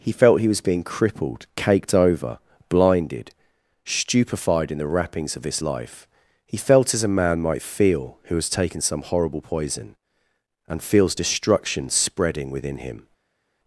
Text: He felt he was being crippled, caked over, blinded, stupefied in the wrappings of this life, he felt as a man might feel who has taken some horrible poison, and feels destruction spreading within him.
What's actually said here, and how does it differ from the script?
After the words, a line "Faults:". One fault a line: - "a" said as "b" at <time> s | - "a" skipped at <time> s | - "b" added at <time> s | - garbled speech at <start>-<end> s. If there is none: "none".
He felt he was being crippled, caked over, blinded, stupefied in the wrappings of this life, he felt as a man might feel who has taken some horrible poison, and feels destruction spreading within him.
Faults:
none